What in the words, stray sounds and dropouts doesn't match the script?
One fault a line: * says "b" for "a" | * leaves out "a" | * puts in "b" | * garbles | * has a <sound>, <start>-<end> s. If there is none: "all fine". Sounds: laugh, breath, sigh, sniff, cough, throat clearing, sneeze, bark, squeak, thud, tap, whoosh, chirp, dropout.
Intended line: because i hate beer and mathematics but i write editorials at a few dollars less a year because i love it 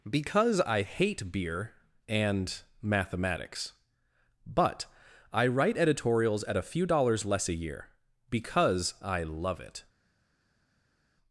all fine